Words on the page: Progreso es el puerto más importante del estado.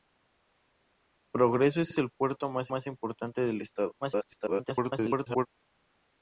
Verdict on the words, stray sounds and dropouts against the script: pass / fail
fail